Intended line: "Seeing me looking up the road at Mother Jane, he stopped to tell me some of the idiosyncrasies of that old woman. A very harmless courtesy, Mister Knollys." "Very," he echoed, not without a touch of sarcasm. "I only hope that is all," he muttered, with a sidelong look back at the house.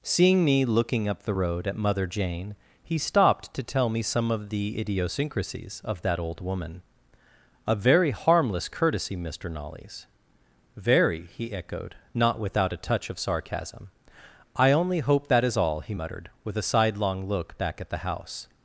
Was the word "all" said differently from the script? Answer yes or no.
no